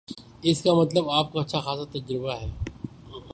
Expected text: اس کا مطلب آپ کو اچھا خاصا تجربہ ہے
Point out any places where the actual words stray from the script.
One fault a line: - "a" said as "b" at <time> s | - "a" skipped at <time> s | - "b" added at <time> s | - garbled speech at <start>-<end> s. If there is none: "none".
none